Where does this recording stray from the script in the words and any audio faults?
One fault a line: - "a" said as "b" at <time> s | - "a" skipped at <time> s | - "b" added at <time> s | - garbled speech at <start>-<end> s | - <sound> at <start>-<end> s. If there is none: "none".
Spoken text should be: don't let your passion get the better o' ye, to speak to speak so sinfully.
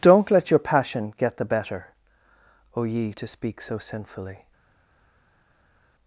- "to speak" skipped at 3.6 s